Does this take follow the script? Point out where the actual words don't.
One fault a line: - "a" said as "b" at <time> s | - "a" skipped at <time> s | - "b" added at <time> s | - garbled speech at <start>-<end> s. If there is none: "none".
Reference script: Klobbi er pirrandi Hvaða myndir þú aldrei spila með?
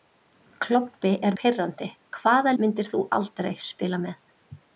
none